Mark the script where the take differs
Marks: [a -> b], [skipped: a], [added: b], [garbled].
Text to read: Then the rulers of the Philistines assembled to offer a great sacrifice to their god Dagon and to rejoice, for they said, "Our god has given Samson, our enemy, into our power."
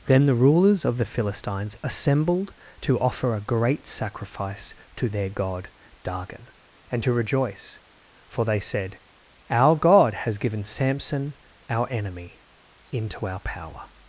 Then the rulers of the Philistines assembled to offer a great sacrifice to their god Dagon and to rejoice, for they said, "Our god has given Samson, our enemy, into our power."